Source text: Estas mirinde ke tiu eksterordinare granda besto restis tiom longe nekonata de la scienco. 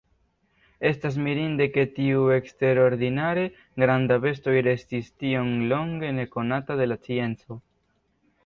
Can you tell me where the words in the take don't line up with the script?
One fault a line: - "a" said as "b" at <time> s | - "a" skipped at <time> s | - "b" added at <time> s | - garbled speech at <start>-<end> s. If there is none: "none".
none